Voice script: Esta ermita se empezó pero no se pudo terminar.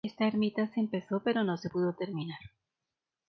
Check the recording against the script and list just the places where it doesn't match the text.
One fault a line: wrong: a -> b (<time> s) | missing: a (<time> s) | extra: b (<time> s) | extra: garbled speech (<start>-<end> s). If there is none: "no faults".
no faults